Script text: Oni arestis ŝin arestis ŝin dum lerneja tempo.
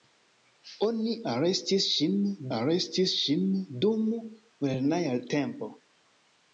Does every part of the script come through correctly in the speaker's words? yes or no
yes